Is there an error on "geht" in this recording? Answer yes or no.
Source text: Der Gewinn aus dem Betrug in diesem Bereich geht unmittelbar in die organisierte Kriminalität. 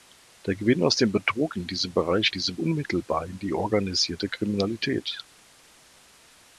yes